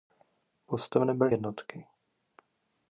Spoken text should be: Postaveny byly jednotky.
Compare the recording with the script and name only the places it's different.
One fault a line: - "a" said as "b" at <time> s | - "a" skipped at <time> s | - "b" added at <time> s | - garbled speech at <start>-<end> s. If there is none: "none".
none